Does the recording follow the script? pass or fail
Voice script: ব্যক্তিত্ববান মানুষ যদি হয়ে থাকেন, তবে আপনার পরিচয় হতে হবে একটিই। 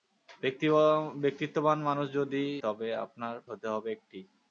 fail